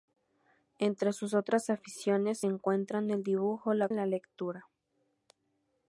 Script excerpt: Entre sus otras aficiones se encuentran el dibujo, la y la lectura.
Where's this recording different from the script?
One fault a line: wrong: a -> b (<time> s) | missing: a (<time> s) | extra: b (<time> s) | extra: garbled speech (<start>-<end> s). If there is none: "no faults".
no faults